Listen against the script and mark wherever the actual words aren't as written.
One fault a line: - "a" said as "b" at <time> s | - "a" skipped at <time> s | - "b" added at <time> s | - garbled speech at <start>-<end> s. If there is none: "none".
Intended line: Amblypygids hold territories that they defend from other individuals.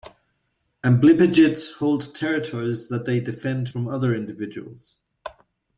none